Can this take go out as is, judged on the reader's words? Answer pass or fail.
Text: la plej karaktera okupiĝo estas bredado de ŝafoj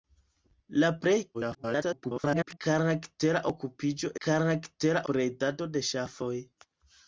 fail